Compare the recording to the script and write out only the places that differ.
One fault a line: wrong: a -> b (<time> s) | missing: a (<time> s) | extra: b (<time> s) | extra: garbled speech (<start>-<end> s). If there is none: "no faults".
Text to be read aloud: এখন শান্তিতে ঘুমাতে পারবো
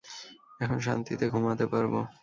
no faults